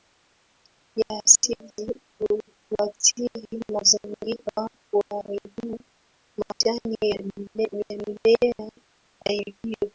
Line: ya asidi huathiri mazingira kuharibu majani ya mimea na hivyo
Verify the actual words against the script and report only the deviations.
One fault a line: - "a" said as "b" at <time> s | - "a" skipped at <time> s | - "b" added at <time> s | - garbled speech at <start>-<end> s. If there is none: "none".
none